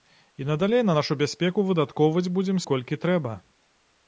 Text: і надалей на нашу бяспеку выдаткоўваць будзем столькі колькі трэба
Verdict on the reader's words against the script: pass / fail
fail